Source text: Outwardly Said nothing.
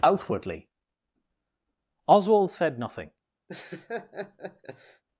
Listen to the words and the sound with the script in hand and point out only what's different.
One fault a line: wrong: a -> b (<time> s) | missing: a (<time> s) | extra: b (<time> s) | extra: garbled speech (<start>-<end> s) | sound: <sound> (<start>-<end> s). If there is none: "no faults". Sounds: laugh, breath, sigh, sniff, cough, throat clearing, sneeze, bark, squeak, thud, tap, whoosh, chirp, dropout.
extra: Oswald (2.1 s)
sound: laugh (3.5-5.0 s)